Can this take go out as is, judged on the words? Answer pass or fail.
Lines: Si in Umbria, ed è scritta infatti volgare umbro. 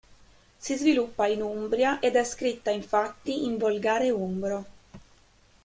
fail